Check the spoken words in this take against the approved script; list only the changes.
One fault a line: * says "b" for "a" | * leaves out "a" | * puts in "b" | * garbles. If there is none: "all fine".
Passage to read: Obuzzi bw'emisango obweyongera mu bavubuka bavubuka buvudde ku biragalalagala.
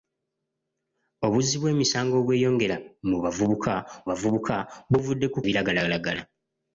all fine